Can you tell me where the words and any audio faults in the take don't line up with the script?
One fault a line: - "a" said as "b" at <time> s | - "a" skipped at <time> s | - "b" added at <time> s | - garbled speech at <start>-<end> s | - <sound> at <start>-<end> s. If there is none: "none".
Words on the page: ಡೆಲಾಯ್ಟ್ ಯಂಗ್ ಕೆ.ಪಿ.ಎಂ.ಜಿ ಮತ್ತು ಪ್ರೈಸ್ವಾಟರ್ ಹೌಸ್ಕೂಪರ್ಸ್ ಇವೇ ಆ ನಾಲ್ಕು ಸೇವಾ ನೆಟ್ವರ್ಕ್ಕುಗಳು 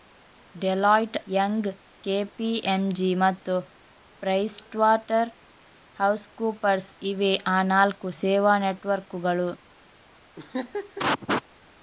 - laugh at 10.4-11.4 s